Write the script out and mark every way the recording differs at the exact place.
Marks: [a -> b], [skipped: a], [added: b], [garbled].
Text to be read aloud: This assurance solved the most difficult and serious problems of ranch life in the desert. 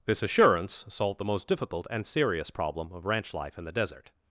This assurance solved the most difficult and serious [problems -> problem] of ranch life in the desert.